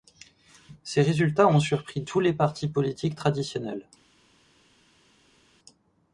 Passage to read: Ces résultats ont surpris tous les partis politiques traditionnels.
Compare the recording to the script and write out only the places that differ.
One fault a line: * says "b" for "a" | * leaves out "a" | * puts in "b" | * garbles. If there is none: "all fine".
all fine